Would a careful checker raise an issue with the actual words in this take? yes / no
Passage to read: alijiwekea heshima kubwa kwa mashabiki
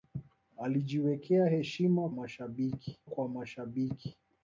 yes